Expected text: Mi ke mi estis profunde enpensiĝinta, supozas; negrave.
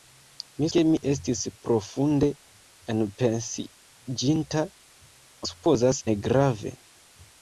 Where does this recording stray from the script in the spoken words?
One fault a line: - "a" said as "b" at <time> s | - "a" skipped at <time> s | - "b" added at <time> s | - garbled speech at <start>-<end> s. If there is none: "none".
none